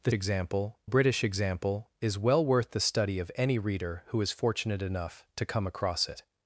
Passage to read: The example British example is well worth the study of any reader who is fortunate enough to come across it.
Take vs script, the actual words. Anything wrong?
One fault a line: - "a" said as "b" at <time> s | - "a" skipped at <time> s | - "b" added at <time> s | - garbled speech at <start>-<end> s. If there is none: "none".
none